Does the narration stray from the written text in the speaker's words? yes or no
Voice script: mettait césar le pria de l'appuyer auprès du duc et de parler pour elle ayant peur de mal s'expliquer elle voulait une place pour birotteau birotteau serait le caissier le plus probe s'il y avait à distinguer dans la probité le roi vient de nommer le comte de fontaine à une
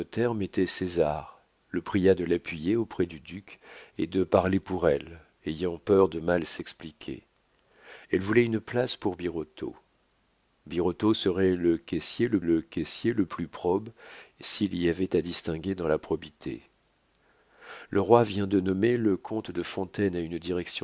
yes